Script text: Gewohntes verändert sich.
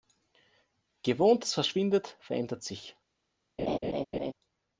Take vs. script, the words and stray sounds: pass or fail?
fail